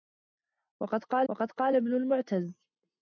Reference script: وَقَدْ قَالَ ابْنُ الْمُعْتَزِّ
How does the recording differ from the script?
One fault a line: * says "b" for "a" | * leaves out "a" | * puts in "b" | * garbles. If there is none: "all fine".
* puts in "وَقَدْ قَالَ"